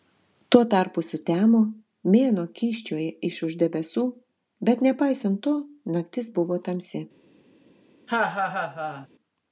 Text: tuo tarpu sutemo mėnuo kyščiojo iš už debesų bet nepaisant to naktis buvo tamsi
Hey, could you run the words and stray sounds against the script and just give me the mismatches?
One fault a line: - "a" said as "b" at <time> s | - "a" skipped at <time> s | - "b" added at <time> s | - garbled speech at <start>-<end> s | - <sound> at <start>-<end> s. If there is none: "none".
- laugh at 8.1-9.1 s